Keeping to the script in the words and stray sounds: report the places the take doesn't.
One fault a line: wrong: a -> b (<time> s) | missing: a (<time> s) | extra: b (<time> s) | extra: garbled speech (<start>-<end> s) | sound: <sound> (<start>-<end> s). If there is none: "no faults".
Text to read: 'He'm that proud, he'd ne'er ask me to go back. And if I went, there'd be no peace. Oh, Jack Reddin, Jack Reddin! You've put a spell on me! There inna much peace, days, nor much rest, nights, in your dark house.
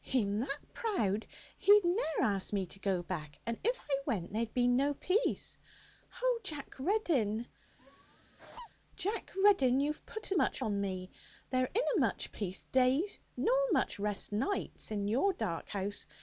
sound: laugh (7.8-8.7 s)
wrong: spell -> much (10.4 s)